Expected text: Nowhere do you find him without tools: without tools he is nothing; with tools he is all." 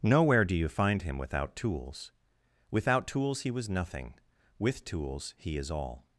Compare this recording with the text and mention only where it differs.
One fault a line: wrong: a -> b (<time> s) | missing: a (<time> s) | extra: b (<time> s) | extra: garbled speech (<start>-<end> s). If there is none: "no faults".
wrong: is -> was (3.5 s)